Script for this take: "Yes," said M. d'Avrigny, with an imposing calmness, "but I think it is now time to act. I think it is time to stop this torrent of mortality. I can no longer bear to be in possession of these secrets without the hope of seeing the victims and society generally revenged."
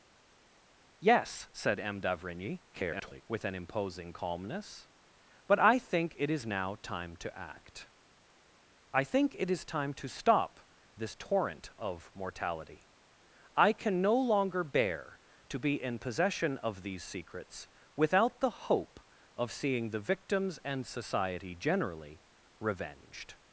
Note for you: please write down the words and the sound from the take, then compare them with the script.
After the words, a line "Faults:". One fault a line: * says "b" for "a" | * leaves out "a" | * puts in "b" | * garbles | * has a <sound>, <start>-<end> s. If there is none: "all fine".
"Yes," said M. d'Avrigny, [garbled] with an imposing calmness, "but I think it is now time to act. I think it is time to stop this torrent of mortality. I can no longer bear to be in possession of these secrets without the hope of seeing the victims and society generally revenged."
Faults:
* garbles